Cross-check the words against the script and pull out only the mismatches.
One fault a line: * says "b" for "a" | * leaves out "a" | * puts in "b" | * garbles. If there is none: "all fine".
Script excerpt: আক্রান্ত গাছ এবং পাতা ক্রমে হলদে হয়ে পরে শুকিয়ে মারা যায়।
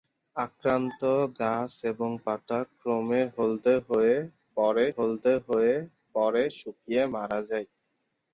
* puts in "হলদে হয়ে পরে"